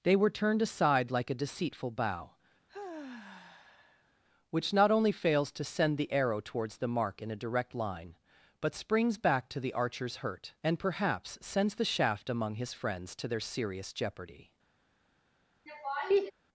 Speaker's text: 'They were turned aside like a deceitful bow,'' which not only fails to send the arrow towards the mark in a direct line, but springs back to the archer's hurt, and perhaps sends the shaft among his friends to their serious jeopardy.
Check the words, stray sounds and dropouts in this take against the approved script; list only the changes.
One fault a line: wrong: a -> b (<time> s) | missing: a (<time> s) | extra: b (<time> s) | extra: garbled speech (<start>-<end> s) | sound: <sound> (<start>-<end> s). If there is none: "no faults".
sound: sigh (2.7-4.2 s)
sound: laugh (15.7-16.3 s)